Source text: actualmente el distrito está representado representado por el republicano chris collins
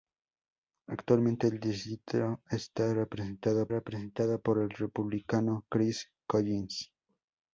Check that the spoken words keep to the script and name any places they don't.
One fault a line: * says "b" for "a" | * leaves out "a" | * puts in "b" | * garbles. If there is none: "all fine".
all fine